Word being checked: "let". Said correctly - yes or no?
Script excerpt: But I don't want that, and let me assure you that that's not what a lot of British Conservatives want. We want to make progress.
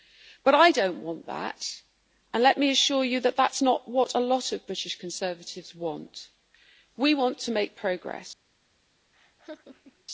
yes